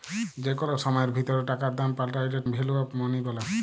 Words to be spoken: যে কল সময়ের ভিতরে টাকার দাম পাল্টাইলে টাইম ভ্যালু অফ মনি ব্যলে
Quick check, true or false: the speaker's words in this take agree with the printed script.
false